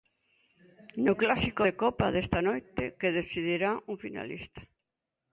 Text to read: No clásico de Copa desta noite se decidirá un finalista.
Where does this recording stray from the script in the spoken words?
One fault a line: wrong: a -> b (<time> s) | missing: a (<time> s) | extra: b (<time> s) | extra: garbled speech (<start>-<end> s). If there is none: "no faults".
wrong: se -> que (3.0 s)